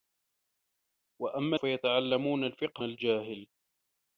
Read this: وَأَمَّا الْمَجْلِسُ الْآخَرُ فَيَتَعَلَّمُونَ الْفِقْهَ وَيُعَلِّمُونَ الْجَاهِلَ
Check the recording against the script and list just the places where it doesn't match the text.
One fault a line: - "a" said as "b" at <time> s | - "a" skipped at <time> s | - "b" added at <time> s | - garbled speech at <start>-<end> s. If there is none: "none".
- "الْمَجْلِسُ الْآخَرُ" skipped at 1.6 s
- "وَيُعَلِّمُونَ" skipped at 2.9 s